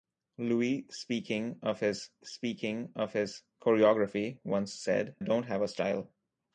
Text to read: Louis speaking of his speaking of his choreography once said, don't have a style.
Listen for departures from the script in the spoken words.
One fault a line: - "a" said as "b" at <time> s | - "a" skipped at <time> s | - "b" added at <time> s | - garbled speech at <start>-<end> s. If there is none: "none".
none